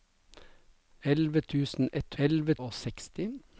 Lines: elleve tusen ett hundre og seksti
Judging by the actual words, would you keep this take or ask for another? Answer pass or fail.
fail